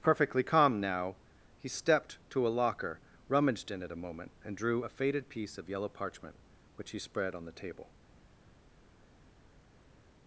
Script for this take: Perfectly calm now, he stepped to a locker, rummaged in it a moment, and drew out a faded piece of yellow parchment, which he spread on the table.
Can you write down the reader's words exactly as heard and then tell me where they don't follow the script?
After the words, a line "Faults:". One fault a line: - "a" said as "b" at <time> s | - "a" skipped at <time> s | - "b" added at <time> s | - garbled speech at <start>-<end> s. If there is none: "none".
Perfectly calm now, he stepped to a locker, rummaged in it a moment, and drew a faded piece of yellow parchment, which he spread on the table.
Faults:
- "out" skipped at 4.8 s